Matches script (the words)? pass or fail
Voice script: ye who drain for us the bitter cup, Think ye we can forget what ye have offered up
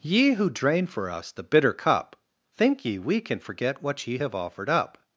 pass